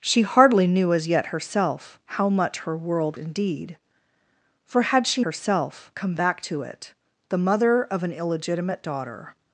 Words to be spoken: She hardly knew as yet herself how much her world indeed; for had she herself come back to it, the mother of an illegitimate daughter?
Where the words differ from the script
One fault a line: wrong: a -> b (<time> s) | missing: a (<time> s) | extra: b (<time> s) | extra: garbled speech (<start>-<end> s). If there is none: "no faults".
no faults